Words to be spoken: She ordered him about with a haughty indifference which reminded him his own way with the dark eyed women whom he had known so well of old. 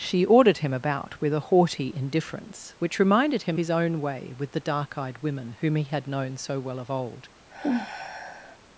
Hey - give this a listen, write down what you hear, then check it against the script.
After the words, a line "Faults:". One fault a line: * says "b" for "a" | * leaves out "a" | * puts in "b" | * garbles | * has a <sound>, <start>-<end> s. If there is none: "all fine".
She ordered him about with a haughty indifference which reminded him his own way with the dark eyed women whom he had known so well of old.
Faults:
* has a sigh, 7.5-8.6 s